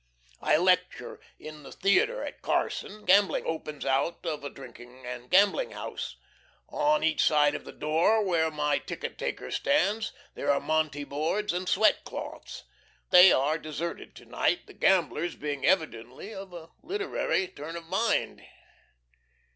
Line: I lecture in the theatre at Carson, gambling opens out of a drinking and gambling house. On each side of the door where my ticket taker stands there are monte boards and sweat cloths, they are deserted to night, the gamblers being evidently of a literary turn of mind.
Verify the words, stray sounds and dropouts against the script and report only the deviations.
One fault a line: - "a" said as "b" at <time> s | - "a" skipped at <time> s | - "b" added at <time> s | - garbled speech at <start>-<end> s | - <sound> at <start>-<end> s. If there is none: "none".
none